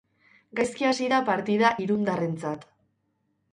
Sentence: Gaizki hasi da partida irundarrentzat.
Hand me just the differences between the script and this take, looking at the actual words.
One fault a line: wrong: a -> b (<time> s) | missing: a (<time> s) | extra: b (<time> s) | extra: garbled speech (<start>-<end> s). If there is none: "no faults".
no faults